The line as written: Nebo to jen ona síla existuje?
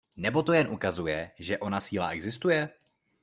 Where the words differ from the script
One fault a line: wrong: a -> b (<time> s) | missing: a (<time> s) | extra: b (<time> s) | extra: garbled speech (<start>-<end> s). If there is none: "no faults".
extra: ukazuje že (0.7 s)